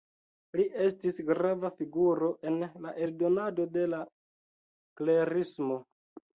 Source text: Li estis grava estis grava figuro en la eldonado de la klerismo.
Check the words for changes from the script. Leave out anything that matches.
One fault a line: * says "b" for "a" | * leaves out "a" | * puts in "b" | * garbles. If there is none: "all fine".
* leaves out "estis grava"